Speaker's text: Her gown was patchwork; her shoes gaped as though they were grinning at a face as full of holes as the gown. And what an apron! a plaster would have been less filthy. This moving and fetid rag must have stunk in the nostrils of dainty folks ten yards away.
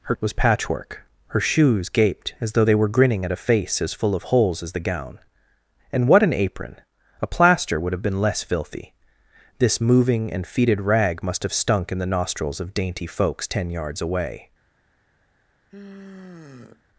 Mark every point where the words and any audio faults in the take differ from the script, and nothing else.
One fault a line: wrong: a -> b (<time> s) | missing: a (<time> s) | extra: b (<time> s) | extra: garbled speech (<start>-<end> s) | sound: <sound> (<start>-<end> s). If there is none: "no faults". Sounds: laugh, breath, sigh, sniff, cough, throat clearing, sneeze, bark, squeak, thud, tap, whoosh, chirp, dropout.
missing: gown (0.1 s)
sound: sigh (15.7-16.8 s)